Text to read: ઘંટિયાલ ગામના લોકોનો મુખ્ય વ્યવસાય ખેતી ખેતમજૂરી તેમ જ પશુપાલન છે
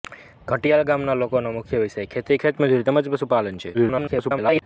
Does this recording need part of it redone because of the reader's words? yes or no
yes